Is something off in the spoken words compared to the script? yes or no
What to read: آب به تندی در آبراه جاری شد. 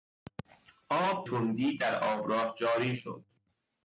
yes